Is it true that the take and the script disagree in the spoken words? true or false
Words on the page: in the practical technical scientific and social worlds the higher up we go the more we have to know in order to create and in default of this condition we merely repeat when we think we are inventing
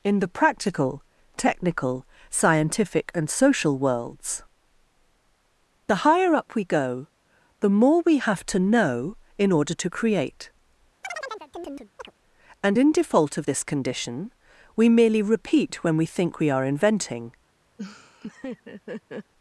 false